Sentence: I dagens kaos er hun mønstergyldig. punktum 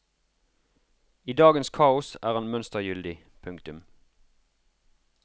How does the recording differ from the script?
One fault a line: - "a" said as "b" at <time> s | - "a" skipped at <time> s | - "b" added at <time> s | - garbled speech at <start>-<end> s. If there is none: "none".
- "hun" said as "han" at 2.3 s